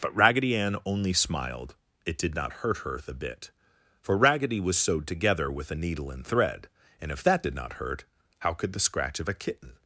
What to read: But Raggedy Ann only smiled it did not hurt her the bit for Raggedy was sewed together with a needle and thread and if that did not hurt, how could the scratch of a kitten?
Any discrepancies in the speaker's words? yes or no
no